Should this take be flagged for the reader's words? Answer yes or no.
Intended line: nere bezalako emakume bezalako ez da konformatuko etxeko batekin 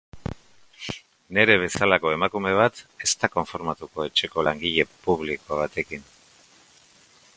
yes